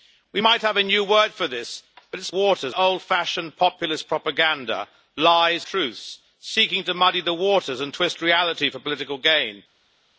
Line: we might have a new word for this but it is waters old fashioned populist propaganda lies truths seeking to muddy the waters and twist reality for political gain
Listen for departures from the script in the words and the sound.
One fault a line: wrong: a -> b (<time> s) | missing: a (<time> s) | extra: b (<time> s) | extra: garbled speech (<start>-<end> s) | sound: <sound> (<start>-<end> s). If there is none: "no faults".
no faults